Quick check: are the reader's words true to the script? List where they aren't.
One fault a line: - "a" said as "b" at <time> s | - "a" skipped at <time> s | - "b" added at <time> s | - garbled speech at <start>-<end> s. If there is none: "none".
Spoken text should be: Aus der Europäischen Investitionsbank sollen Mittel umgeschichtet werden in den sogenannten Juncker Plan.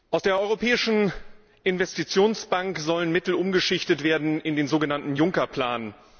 none